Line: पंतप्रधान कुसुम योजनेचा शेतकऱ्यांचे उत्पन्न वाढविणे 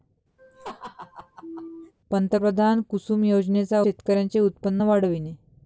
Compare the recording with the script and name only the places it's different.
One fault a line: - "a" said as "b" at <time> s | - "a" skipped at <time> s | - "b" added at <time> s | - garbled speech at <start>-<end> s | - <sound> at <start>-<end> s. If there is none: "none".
- laugh at 0.4-1.9 s